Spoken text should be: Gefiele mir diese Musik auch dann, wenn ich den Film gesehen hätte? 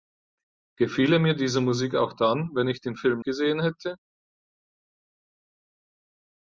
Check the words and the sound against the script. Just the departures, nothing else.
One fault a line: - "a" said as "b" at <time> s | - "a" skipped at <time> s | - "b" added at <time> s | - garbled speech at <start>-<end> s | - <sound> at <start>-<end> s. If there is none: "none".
none